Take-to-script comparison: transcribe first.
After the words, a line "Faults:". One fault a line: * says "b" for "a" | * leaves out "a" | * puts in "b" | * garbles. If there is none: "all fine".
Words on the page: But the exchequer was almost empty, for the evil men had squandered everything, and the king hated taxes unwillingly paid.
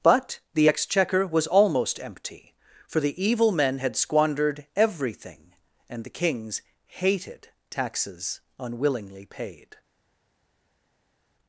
But the exchequer was almost empty, for the evil men had squandered everything, and the kings hated taxes unwillingly paid.
Faults:
* says "kings" for "king"